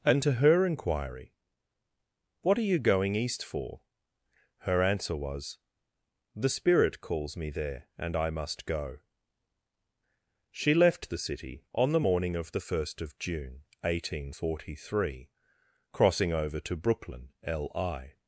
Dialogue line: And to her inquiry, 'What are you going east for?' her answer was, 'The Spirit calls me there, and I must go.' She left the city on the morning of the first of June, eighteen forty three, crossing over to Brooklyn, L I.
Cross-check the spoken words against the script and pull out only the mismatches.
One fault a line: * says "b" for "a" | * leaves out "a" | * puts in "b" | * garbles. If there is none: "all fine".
all fine